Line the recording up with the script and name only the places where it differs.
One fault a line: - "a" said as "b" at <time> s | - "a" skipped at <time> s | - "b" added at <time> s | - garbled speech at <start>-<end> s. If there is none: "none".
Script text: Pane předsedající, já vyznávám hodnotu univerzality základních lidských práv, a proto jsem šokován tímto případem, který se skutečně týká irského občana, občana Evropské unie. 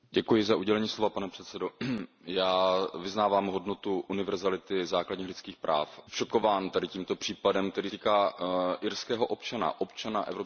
- "a proto jsem" skipped at 6.0 s
- "se skutečně" skipped at 7.9 s